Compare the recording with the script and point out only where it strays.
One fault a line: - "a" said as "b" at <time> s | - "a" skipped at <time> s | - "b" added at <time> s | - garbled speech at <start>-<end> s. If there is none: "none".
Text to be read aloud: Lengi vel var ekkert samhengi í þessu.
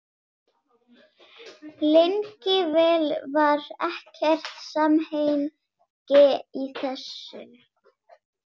none